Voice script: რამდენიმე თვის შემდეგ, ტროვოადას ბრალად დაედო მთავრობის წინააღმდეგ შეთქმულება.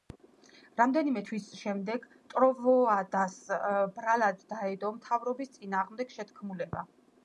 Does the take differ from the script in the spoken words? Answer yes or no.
no